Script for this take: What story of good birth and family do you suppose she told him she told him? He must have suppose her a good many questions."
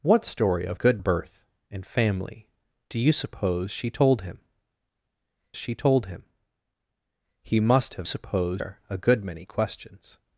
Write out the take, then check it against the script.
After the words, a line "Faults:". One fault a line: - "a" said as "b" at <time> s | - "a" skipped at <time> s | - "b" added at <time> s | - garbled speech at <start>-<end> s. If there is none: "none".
What story of good birth and family do you suppose she told him she told him? He must have suppose her a good many questions."
Faults:
none